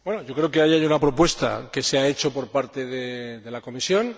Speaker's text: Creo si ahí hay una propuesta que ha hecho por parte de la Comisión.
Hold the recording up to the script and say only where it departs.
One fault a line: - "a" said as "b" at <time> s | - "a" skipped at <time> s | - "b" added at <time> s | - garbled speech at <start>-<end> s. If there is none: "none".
- "si" said as "que" at 0.5 s
- "se" added at 1.8 s